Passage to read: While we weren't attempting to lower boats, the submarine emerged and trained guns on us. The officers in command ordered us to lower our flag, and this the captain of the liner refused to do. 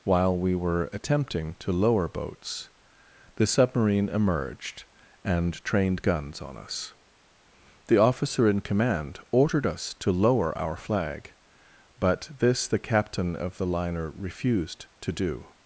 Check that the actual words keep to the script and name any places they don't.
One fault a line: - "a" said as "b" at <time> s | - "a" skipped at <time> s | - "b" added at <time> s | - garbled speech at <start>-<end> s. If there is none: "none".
- "weren't" said as "were" at 0.6 s
- "officers" said as "officer" at 8.0 s
- "and" said as "but" at 12.0 s